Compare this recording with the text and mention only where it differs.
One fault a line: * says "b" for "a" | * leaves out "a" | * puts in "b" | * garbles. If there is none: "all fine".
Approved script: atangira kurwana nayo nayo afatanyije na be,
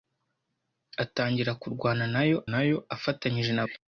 all fine